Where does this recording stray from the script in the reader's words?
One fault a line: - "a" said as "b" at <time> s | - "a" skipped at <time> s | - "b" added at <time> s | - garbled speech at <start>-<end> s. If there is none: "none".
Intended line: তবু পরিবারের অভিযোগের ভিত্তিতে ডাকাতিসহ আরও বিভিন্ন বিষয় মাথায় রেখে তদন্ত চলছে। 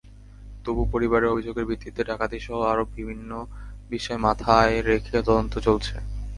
none